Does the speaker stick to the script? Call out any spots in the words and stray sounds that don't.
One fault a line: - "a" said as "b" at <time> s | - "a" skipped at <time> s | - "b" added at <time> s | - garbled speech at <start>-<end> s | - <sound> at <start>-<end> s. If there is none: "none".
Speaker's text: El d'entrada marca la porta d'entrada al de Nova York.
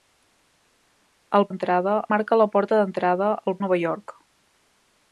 none